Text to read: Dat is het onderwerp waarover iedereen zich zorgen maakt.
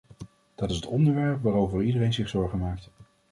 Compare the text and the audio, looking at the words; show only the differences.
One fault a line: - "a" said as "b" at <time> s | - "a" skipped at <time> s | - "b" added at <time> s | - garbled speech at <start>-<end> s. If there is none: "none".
none